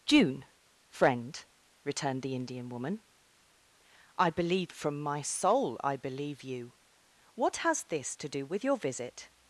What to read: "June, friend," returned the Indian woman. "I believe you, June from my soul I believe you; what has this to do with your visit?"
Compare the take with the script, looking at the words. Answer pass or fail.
fail